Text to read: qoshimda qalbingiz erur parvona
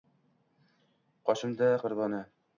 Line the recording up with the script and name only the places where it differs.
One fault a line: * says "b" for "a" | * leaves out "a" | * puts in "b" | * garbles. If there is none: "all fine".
* leaves out "qalbingiz erur"